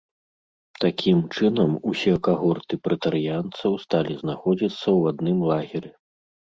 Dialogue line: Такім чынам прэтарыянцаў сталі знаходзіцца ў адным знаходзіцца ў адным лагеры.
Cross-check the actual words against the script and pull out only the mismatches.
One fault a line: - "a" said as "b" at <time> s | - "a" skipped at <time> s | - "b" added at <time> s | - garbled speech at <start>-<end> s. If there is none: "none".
- "усе кагорты" added at 1.9 s
- "знаходзіцца ў адным" skipped at 5.4 s